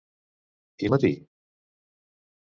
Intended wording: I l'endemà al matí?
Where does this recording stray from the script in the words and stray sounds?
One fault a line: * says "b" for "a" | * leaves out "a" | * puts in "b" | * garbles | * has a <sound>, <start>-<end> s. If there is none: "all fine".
* leaves out "l'endemà"